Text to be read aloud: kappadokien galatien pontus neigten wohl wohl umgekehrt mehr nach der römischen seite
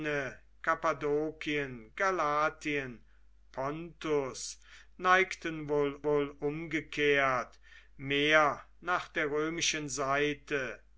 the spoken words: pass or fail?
pass